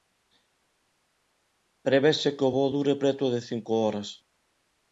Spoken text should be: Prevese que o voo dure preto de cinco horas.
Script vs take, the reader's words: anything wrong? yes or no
no